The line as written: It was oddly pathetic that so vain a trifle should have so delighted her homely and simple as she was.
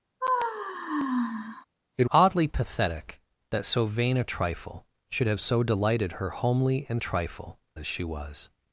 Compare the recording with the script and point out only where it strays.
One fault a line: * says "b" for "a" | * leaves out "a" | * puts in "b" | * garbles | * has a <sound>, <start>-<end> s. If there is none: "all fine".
* has a sigh, 0.2-1.7 s
* leaves out "was"
* says "trifle" for "simple"